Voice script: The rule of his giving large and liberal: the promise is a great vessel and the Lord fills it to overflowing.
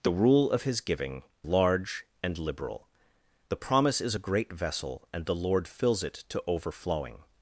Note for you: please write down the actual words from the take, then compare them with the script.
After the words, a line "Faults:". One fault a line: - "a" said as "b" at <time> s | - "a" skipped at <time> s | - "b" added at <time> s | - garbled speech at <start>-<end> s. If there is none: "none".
The rule of his giving large and liberal: the promise is a great vessel and the Lord fills it to overflowing.
Faults:
none